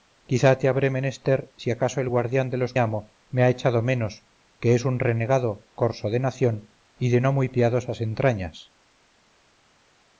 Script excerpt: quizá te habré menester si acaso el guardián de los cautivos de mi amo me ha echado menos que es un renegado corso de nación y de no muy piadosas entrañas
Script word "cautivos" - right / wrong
wrong